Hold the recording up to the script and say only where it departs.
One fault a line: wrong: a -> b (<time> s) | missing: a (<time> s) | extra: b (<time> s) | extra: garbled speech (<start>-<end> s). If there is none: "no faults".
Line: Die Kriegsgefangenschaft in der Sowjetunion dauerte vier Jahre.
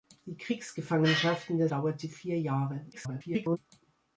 missing: Sowjetunion (1.7 s)
extra: garbled speech (2.9-3.6 s)